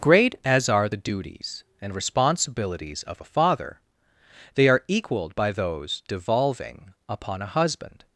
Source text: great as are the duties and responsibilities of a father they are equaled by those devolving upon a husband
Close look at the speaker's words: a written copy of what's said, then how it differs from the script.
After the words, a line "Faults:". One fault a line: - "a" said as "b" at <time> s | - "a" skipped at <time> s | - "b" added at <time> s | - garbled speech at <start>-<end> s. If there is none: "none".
great as are the duties and responsibilities of a father they are equaled by those devolving upon a husband
Faults:
none